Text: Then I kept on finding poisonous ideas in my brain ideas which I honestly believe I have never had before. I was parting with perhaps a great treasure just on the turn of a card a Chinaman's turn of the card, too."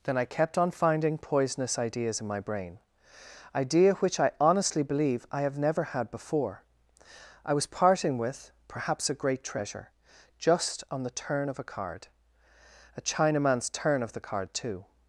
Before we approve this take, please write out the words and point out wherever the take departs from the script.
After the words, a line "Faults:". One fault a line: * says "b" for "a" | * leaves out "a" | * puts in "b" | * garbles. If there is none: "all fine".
Then I kept on finding poisonous ideas in my brain idea which I honestly believe I have never had before. I was parting with perhaps a great treasure just on the turn of a card a Chinaman's turn of the card, too."
Faults:
* says "idea" for "ideas"